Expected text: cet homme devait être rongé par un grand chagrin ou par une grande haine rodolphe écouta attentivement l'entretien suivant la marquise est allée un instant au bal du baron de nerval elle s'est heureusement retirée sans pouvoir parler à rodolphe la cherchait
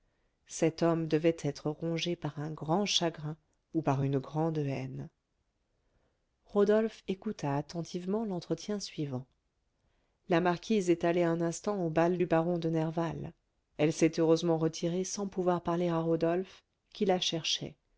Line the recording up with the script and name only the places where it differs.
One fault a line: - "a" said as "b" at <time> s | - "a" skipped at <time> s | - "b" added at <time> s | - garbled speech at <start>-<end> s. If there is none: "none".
- "qui" added at 16.9 s